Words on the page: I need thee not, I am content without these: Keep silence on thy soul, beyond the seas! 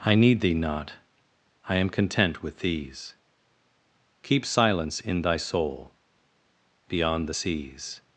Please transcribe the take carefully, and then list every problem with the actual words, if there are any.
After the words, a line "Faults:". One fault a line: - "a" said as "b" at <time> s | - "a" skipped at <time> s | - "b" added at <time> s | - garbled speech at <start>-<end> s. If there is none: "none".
I need thee not, I am content with these: Keep silence in thy soul, beyond the seas!
Faults:
- "without" said as "with" at 2.4 s
- "on" said as "in" at 5.0 s